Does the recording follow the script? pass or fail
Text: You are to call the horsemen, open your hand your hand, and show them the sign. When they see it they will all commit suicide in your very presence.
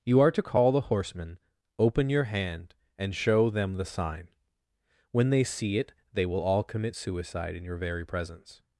fail